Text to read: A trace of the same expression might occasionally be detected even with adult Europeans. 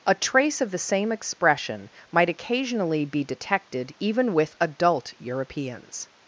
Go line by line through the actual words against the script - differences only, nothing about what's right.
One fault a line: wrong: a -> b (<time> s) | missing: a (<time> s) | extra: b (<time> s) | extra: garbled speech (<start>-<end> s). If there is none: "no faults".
no faults